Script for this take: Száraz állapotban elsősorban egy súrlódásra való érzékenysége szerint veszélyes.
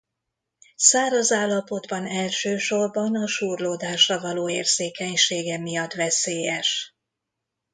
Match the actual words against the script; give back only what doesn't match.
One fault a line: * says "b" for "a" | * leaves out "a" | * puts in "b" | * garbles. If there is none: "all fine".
* says "a" for "egy"
* says "miatt" for "szerint"